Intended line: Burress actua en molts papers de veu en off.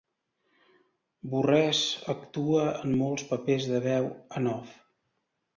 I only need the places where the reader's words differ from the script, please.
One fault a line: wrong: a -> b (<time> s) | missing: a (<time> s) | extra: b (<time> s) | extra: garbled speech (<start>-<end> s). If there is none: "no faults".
no faults